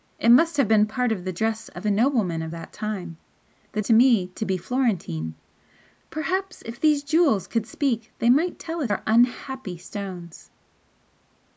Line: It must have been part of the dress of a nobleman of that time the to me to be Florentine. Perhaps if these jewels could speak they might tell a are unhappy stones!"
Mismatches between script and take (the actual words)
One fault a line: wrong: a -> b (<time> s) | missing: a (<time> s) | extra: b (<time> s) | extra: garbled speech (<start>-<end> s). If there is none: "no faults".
no faults